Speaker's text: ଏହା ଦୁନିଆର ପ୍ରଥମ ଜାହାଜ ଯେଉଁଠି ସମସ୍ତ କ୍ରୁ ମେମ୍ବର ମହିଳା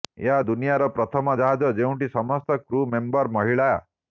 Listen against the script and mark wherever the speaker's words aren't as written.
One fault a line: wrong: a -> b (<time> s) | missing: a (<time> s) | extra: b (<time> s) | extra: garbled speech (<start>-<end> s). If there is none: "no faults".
no faults